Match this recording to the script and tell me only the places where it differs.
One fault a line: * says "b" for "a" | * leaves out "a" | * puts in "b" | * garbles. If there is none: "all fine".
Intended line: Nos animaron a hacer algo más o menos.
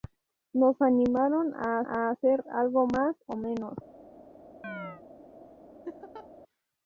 * puts in "a"